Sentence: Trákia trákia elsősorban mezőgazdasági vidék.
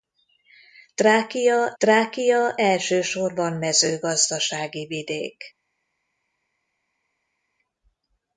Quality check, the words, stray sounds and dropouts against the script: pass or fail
pass